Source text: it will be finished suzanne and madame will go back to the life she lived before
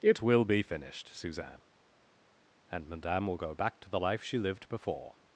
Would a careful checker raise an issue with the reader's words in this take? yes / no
no